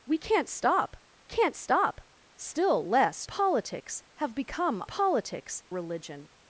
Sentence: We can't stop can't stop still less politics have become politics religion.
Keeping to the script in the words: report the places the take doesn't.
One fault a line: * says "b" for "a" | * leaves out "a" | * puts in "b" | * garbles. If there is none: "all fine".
all fine